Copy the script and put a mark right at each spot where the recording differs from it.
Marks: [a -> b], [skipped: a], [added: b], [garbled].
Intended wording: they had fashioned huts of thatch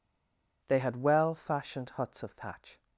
they had [added: well] fashioned huts of thatch